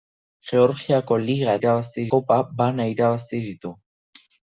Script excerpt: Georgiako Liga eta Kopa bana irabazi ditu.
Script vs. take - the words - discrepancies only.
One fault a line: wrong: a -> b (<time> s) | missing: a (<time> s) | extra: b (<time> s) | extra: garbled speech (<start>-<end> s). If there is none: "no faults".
wrong: eta -> irabazi (1.6 s)